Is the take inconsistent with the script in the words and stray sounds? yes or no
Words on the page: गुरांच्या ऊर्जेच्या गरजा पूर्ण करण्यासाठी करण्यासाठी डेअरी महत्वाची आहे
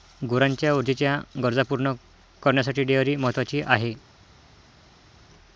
yes